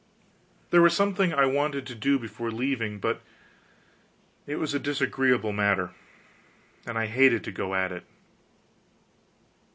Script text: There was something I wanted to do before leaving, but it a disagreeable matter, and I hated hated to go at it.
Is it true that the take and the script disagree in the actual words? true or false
true